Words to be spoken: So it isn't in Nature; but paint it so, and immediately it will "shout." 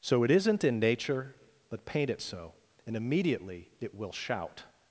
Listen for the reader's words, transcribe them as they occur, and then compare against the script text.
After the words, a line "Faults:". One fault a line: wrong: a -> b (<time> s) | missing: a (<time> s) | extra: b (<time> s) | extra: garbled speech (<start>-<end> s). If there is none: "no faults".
So it isn't in Nature; but paint it so, and immediately it will "shout."
Faults:
no faults